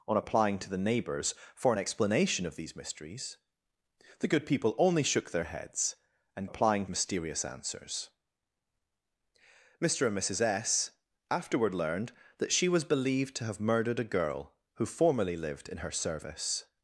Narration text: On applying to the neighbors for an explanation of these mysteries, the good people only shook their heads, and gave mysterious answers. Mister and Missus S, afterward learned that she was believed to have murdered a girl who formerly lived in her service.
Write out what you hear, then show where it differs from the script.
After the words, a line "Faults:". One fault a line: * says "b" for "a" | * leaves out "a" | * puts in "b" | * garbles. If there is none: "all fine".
On applying to the neighbors for an explanation of these mysteries, the good people only shook their heads, and applying mysterious answers. Mister and Missus S, afterward learned that she was believed to have murdered a girl who formerly lived in her service.
Faults:
* says "applying" for "gave"